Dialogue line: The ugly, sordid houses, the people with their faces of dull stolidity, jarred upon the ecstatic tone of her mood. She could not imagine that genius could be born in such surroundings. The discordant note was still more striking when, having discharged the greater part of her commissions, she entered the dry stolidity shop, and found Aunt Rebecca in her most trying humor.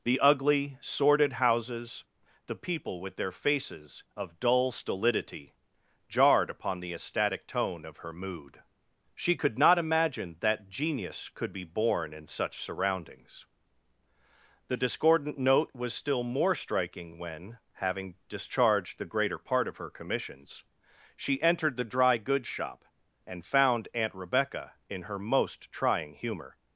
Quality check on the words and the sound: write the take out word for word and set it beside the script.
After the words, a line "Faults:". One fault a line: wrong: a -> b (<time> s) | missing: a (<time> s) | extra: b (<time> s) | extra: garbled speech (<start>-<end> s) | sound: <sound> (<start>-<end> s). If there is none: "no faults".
The ugly, sordid houses, the people with their faces of dull stolidity, jarred upon the ecstatic tone of her mood. She could not imagine that genius could be born in such surroundings. The discordant note was still more striking when, having discharged the greater part of her commissions, she entered the dry goods shop, and found Aunt Rebecca in her most trying humor.
Faults:
wrong: stolidity -> goods (22.2 s)